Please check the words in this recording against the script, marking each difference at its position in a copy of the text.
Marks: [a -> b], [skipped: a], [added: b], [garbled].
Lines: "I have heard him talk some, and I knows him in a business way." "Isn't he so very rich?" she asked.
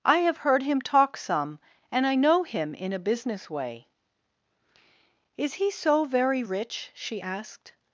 "I have heard him talk some, and I [knows -> know] him in a business way." ["Isn't -> Is] he so very rich?" she asked.